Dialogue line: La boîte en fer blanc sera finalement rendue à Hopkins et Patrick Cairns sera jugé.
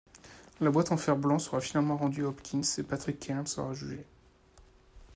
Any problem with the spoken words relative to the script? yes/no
no